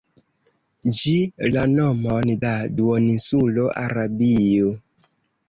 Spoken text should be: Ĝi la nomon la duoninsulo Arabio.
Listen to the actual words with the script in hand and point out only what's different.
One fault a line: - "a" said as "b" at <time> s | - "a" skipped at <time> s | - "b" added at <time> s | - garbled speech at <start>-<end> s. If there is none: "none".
none